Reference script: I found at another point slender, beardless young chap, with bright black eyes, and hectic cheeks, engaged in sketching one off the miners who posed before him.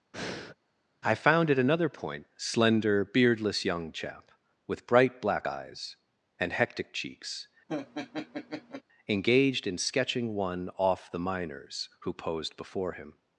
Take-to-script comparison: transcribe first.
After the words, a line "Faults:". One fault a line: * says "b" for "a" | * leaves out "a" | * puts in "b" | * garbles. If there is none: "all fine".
I found at another point slender, beardless young chap, with bright black eyes, and hectic cheeks, engaged in sketching one off the miners who posed before him.
Faults:
all fine